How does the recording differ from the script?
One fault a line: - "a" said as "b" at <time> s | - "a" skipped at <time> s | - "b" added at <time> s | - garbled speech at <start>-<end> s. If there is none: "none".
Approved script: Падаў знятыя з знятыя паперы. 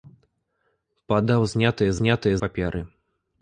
none